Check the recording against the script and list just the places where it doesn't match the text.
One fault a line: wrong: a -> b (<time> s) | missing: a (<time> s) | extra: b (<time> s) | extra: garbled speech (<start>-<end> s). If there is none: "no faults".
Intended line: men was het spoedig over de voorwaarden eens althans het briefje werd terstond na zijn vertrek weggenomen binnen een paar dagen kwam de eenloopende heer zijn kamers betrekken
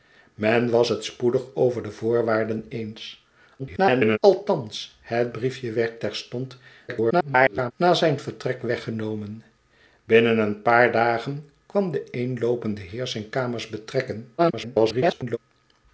extra: garbled speech (3.6-4.2 s)
extra: garbled speech (6.9-7.7 s)
extra: garbled speech (14.4-15.4 s)